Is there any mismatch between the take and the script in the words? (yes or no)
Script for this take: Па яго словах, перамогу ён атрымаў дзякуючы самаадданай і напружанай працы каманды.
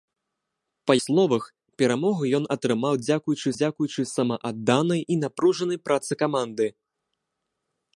yes